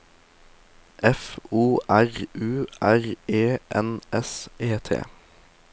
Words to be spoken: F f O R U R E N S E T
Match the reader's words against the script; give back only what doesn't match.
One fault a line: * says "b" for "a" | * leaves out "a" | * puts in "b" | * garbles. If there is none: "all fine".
* leaves out "f"